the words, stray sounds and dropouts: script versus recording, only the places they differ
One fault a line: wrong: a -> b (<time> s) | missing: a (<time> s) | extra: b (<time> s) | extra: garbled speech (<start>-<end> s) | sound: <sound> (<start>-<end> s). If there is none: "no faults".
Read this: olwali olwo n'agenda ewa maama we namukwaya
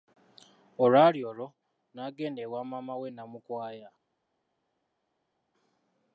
no faults